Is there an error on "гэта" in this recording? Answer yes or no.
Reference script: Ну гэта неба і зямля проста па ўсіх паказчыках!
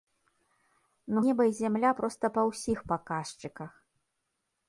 yes